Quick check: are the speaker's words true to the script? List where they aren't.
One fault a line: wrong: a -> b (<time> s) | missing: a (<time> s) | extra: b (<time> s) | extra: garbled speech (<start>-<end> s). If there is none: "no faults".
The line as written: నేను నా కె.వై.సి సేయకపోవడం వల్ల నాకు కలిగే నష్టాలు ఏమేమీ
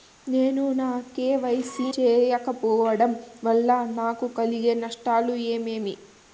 no faults